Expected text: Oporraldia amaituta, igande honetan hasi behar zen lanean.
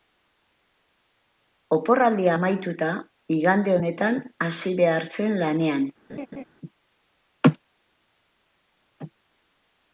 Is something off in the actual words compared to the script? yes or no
no